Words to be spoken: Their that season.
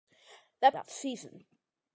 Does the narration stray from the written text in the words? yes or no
no